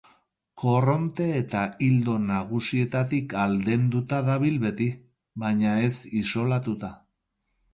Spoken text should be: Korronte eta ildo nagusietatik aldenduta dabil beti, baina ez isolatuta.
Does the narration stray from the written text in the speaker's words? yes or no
no